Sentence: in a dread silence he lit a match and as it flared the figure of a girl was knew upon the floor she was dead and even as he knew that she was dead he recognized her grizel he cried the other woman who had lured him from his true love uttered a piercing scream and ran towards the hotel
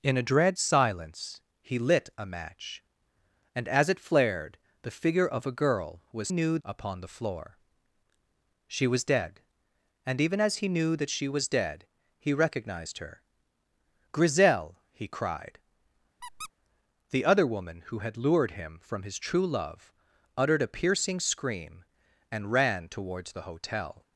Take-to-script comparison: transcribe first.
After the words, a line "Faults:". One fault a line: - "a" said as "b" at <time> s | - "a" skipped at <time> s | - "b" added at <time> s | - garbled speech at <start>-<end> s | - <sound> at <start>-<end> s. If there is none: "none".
in a dread silence he lit a match and as it flared the figure of a girl was knew upon the floor she was dead and even as he knew that she was dead he recognized her grizel he cried the other woman who had lured him from his true love uttered a piercing scream and ran towards the hotel
Faults:
- squeak at 16.2-16.5 s